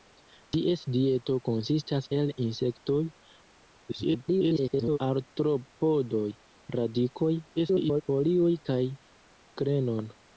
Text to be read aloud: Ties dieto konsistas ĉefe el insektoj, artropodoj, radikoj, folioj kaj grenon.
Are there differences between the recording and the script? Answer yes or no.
yes